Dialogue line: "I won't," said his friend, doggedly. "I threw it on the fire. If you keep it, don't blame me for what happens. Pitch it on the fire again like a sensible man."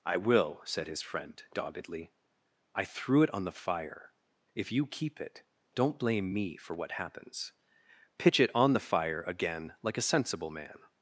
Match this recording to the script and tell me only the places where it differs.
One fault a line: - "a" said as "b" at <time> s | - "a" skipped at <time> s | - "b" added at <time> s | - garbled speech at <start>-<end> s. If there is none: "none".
- "won't" said as "will" at 0.2 s